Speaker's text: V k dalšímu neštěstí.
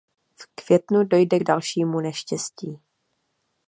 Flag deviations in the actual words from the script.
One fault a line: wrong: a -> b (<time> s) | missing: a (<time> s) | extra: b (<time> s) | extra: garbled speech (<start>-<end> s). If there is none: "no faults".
extra: květnu dojde (0.6 s)